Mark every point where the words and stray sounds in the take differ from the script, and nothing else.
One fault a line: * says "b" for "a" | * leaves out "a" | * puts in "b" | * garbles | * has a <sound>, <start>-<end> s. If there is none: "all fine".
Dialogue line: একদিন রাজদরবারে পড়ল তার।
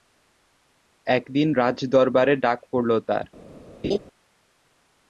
* puts in "ডাক"
* has a laugh, 3.8-4.0 s